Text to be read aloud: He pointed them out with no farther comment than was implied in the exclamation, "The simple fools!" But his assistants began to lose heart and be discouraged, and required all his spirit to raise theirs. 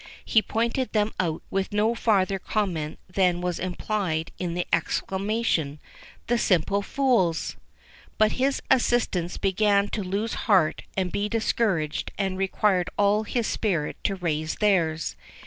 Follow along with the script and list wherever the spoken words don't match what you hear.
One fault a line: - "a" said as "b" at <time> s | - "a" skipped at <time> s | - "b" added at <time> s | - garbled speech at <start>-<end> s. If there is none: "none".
none